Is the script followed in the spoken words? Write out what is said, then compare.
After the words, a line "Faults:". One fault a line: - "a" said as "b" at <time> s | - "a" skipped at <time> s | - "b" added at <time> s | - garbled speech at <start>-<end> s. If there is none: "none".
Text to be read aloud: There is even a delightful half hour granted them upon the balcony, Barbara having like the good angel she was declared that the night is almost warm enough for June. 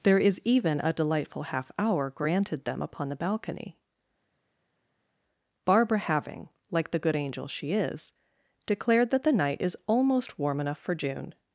There is even a delightful half hour granted them upon the balcony, Barbara having like the good angel she is declared that the night is almost warm enough for June.
Faults:
- "was" said as "is" at 7.7 s